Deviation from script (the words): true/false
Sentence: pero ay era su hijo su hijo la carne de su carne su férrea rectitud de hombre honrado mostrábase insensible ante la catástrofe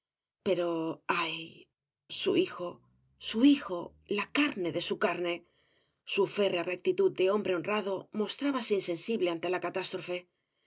true